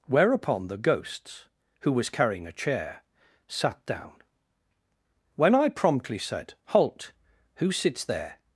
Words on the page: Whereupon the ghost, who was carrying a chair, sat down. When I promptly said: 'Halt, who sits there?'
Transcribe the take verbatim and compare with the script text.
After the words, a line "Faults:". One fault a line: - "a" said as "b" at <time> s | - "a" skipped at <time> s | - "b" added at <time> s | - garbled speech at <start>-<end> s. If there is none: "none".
Whereupon the ghosts, who was carrying a chair, sat down. When I promptly said: 'Halt, who sits there?'
Faults:
- "ghost" said as "ghosts" at 0.8 s